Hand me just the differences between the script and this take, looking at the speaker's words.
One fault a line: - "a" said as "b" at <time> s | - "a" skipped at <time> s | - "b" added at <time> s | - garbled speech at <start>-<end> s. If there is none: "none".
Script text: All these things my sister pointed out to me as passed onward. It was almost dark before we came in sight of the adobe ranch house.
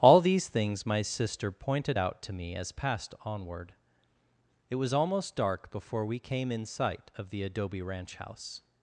none